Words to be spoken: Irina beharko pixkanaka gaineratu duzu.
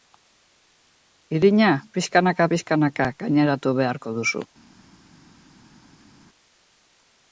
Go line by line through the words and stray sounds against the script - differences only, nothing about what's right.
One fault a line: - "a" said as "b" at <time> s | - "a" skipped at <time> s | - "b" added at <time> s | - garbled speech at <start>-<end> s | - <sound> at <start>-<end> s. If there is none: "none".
- "beharko" said as "pixkanaka" at 2.0 s
- "beharko" added at 3.8 s